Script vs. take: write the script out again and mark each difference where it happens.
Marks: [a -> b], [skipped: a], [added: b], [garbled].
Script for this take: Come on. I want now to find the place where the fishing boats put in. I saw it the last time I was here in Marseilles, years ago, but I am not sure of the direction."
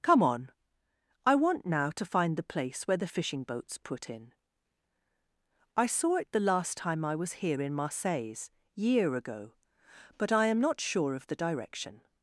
Come on. I want now to find the place where the fishing boats put in. I saw it the last time I was here in Marseilles, [years -> year] ago, but I am not sure of the direction."